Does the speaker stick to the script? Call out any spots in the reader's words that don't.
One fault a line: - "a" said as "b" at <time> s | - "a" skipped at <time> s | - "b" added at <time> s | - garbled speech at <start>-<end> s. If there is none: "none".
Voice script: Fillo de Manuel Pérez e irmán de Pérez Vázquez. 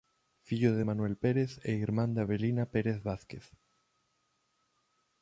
- "Avelina" added at 2.2 s